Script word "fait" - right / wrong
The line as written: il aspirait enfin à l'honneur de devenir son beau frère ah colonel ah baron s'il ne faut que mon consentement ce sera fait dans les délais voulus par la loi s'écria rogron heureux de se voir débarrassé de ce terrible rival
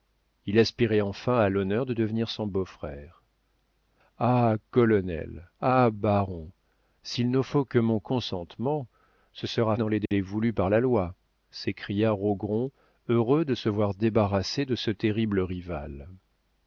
wrong